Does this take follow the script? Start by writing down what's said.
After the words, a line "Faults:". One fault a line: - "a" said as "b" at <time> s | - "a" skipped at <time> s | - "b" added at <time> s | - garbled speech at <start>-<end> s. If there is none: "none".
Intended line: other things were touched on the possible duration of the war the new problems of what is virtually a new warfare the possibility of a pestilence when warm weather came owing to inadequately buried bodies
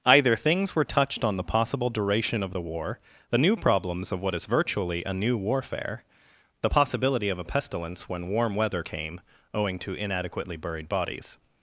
either things were touched on the possible duration of the war the new problems of what is virtually a new warfare the possibility of a pestilence when warm weather came owing to inadequately buried bodies
Faults:
- "other" said as "either" at 0.0 s